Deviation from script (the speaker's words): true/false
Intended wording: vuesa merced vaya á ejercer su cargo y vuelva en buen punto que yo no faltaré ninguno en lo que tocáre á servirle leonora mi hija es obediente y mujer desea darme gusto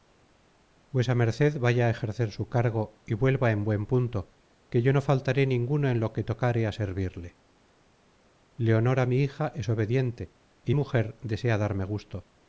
false